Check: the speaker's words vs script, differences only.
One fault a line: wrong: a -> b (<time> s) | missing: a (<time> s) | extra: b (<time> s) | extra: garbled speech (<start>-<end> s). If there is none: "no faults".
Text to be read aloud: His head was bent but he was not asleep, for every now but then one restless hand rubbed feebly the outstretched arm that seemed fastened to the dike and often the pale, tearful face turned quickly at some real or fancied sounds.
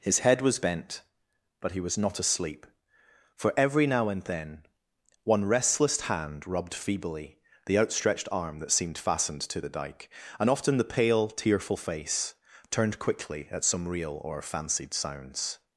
wrong: but -> and (4.1 s)